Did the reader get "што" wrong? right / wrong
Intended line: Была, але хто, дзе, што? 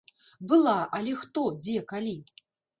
wrong